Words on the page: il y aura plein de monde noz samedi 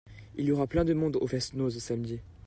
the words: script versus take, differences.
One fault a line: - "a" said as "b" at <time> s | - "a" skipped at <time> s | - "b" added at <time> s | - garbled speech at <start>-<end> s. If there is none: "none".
- "au fest" added at 1.2 s